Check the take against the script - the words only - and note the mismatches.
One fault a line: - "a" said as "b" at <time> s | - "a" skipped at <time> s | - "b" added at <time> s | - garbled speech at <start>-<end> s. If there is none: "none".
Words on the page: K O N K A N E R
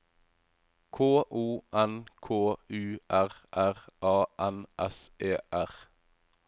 - "U R R" added at 2.7 s
- "S" added at 4.8 s